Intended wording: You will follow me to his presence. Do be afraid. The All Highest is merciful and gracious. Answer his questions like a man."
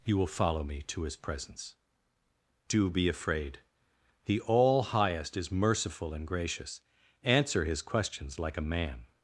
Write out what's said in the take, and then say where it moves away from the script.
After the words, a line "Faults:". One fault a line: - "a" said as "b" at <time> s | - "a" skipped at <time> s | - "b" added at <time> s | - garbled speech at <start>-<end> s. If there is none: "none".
You will follow me to his presence. Do be afraid. The All Highest is merciful and gracious. Answer his questions like a man."
Faults:
none